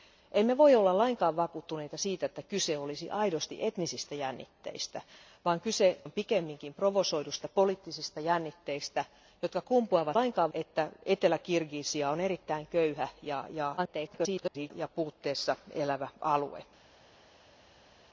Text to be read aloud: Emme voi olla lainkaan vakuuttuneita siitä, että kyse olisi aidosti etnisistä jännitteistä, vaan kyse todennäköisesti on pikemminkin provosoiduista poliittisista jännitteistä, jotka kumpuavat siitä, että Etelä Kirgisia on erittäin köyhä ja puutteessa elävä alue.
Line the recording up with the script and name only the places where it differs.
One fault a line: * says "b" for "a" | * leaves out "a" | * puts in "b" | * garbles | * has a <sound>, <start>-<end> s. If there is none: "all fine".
* leaves out "todennäköisesti"
* says "lainkaan" for "siitä"
* garbles